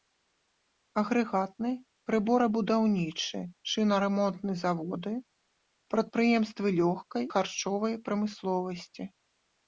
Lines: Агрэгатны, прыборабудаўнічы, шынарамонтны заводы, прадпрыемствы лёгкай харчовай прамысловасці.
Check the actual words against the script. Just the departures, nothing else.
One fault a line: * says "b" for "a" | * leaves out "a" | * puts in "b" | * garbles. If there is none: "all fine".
all fine